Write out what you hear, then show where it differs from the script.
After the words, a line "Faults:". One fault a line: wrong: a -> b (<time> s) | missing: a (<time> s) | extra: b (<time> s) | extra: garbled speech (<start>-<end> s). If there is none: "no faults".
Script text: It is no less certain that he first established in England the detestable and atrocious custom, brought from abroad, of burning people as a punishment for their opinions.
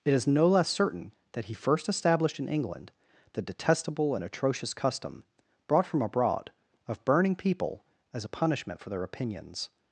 It is no less certain that he first established in England the detestable and atrocious custom, brought from abroad, of burning people as a punishment for their opinions.
Faults:
no faults